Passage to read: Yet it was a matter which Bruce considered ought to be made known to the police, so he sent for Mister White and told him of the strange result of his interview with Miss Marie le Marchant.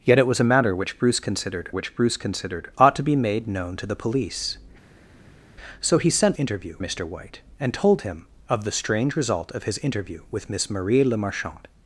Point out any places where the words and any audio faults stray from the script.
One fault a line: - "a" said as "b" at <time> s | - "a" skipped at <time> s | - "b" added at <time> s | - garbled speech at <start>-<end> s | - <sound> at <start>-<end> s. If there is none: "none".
- "which Bruce considered" added at 1.7 s
- "for" said as "interview" at 6.3 s